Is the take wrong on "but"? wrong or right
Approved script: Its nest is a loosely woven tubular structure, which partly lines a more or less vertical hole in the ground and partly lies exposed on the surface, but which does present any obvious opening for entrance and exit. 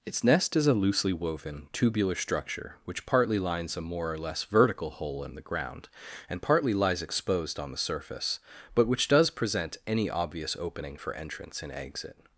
right